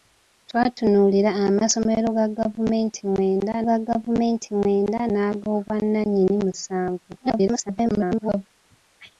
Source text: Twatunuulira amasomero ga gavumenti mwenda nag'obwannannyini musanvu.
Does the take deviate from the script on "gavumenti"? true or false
false